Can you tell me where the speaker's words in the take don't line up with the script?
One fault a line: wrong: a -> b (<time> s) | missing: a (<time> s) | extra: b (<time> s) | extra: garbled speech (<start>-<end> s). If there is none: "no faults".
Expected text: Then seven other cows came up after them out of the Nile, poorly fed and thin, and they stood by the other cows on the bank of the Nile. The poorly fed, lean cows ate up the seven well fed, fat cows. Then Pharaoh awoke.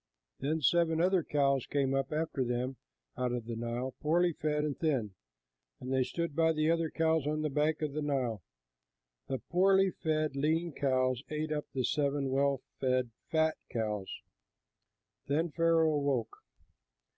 no faults